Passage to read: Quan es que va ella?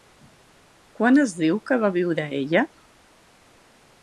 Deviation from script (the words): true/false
true